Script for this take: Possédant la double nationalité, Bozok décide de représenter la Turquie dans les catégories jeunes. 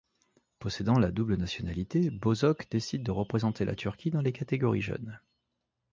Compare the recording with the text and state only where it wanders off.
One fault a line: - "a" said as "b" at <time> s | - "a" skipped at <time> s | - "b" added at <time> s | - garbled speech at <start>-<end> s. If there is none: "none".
none